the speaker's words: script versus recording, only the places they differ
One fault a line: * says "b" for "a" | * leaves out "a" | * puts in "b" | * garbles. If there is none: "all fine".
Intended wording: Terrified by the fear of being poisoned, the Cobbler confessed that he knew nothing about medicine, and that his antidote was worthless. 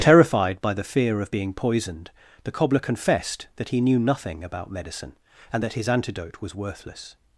all fine